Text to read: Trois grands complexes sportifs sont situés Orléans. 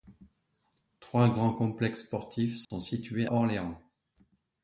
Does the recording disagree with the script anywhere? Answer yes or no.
no